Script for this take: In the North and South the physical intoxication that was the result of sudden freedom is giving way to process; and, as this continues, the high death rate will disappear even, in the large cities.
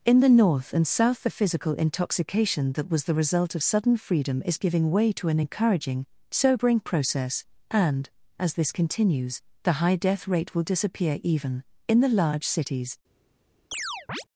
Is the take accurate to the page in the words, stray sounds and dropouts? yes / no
no